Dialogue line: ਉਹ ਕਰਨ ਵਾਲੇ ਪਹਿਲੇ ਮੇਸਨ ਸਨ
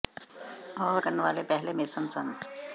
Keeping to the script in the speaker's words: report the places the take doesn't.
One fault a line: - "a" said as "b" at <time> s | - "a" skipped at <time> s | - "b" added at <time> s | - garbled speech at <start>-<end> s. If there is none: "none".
none